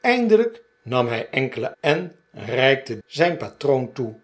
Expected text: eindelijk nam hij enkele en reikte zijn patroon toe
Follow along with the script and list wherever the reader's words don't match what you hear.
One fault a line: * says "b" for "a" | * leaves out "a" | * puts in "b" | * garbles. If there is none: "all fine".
all fine